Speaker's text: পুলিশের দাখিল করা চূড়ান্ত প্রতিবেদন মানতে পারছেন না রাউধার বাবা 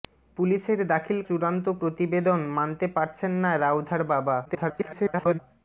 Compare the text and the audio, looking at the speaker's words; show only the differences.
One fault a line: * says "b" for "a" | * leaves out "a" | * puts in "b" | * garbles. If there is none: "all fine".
* leaves out "করা"
* garbles